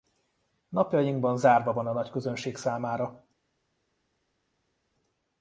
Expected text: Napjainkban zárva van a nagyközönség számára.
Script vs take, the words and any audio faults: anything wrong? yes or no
no